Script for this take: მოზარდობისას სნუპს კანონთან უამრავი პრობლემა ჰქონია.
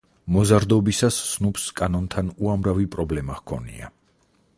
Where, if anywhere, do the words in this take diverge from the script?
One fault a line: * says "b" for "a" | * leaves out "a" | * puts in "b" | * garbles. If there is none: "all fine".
all fine